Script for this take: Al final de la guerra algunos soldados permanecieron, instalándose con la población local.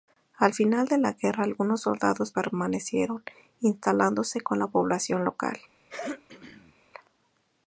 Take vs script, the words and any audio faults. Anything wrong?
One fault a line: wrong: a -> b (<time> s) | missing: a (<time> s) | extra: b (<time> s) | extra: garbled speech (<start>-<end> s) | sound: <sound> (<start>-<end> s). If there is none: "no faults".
sound: throat clearing (5.9-6.7 s)